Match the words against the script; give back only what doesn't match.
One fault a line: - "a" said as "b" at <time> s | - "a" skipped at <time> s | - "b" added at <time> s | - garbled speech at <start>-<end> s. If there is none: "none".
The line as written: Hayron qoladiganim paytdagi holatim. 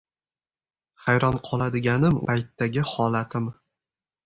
none